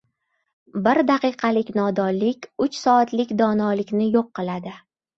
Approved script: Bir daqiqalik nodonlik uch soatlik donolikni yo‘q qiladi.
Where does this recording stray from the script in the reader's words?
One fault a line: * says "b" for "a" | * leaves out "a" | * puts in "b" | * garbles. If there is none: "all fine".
all fine